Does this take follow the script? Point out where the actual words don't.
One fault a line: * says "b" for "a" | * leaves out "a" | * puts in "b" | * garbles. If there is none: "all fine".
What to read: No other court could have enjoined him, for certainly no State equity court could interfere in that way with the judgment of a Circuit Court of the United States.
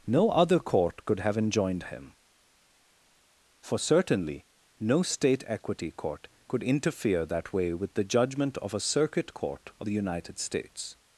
* leaves out "in"